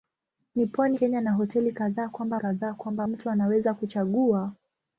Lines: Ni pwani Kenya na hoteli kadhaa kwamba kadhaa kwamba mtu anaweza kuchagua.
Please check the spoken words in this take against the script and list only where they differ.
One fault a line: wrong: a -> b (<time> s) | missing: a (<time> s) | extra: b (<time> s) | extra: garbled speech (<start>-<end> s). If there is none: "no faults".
no faults